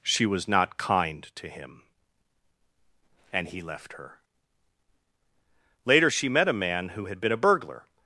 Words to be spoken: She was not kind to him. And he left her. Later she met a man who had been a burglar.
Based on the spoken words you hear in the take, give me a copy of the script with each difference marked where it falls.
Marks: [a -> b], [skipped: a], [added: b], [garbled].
She was not kind to him. And he left her. Later she met a man who had been a burglar.